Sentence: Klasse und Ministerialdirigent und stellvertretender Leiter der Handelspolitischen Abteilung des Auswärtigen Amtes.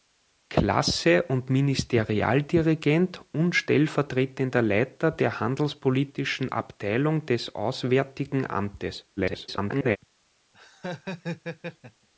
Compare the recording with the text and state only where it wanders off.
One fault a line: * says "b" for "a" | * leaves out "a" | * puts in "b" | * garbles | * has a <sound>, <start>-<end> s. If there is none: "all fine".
* garbles
* has a laugh, 10.5-12.1 s